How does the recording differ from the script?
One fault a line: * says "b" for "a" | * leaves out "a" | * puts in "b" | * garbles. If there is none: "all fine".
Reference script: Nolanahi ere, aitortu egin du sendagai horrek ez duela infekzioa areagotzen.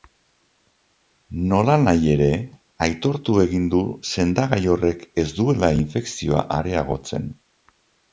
all fine